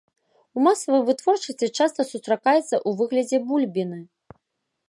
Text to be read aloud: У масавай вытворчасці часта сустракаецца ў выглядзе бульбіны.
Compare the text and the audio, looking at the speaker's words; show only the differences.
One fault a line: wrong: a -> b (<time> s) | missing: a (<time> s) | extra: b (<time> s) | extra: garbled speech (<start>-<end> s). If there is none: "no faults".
no faults